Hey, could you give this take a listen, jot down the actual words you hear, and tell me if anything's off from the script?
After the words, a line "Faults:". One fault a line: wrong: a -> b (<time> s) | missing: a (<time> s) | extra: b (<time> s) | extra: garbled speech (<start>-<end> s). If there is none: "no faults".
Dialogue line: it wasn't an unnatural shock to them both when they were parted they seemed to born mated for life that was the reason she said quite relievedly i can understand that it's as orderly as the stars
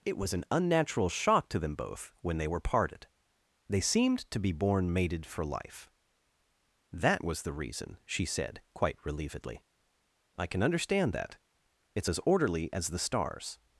it was an unnatural shock to them both when they were parted they seemed to be born mated for life that was the reason she said quite relievedly i can understand that it's as orderly as the stars
Faults:
wrong: wasn't -> was (0.2 s)
extra: be (4.4 s)